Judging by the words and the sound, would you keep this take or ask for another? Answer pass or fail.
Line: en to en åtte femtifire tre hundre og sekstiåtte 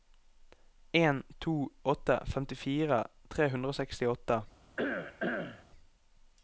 fail